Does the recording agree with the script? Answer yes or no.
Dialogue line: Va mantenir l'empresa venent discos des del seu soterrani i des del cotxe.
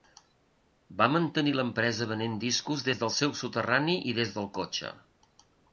yes